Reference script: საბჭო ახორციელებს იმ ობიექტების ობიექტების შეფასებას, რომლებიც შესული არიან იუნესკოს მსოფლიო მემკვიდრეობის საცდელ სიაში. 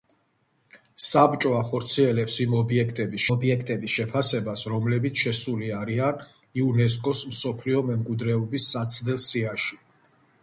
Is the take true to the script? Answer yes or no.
yes